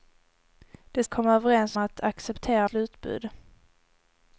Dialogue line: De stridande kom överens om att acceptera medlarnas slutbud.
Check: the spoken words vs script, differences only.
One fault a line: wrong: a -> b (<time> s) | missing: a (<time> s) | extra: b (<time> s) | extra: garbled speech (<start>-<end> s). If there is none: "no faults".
missing: stridande (1.0 s)
missing: om (1.8 s)
missing: medlarnas (2.7 s)